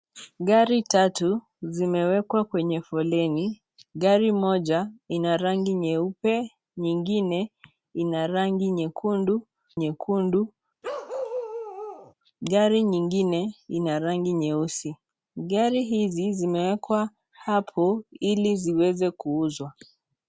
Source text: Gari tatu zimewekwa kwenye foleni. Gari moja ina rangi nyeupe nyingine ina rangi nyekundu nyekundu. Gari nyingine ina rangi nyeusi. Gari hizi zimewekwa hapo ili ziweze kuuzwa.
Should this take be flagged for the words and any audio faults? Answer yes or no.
yes